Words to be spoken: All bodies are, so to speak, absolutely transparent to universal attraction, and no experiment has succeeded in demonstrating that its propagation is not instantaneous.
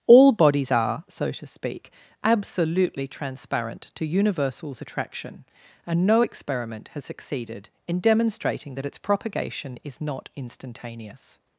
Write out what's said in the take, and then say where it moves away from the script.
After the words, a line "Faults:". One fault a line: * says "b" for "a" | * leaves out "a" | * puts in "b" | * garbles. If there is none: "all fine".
All bodies are, so to speak, absolutely transparent to universals attraction, and no experiment has succeeded in demonstrating that its propagation is not instantaneous.
Faults:
* says "universals" for "universal"